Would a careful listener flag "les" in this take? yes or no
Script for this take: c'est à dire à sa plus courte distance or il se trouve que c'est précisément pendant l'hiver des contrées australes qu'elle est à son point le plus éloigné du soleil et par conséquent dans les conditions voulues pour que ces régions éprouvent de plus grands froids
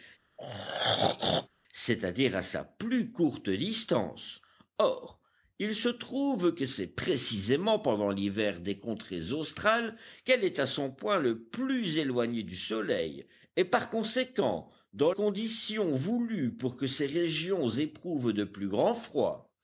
yes